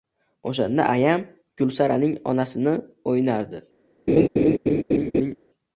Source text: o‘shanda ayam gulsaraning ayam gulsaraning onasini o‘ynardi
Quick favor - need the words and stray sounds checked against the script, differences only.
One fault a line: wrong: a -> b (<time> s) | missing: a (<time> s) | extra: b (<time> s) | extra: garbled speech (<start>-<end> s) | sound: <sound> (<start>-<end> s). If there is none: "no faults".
missing: ayam gulsaraning (2.2 s)
sound: laugh (4.1-5.4 s)